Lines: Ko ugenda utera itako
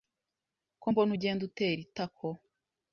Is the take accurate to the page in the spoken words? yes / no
no